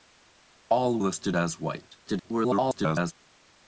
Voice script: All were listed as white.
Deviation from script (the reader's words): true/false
true